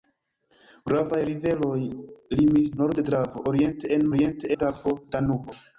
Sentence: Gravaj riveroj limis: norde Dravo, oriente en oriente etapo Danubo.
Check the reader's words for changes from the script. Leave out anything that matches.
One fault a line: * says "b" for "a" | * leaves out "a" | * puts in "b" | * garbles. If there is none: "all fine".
all fine